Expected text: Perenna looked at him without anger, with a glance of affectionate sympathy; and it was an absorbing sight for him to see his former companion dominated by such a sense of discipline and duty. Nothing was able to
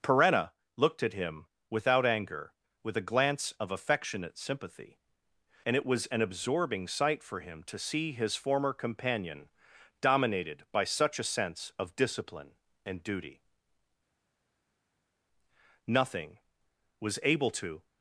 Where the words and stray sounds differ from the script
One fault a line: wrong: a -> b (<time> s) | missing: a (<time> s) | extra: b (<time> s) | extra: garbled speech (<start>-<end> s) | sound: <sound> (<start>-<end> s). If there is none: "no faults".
no faults